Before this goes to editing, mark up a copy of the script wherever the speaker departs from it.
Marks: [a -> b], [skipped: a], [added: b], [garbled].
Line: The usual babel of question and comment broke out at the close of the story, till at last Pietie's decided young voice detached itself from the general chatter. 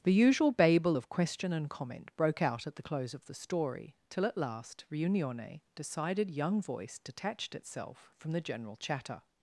The usual babel of question and comment broke out at the close of the story, till at last [Pietie's -> Riunione] decided young voice detached itself from the general chatter.